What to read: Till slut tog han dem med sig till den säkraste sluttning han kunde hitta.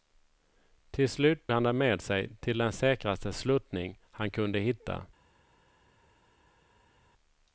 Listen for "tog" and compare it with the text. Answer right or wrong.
wrong